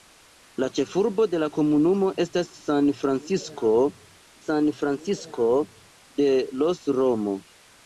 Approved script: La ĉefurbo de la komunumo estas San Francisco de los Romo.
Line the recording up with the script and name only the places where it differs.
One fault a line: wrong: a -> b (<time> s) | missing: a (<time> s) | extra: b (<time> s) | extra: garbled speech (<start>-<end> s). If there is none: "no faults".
extra: San Francisco (4.4 s)